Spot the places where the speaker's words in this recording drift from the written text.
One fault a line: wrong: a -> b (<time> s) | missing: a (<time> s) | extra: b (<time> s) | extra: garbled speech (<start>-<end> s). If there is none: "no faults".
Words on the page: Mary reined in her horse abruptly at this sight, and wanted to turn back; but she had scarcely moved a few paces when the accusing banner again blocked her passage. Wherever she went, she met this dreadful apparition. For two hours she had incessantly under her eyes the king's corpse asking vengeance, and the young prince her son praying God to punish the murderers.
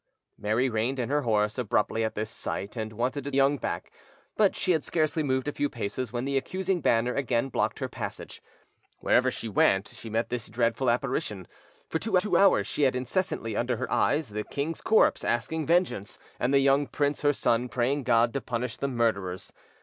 wrong: turn -> young (3.3 s)
extra: two (12.2 s)